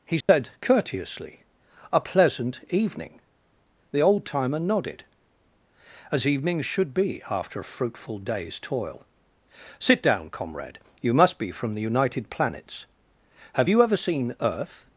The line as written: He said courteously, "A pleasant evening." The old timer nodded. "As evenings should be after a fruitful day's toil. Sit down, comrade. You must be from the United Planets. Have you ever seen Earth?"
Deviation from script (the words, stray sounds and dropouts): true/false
true